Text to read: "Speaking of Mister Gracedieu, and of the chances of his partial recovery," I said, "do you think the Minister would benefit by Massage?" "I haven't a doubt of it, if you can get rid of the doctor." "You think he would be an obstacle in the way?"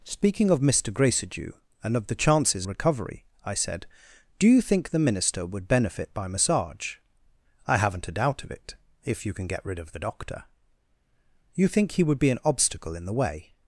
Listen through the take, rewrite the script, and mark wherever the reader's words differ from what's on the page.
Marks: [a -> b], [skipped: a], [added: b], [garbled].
"Speaking of Mister Gracedieu, and of the chances [skipped: of his partial] recovery," I said, "do you think the Minister would benefit by Massage?" "I haven't a doubt of it, if you can get rid of the doctor." "You think he would be an obstacle in the way?"